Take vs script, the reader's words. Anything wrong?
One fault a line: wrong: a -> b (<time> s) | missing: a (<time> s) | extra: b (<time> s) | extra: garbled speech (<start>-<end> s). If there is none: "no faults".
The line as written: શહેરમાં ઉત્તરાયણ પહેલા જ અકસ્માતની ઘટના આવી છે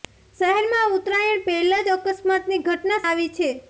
no faults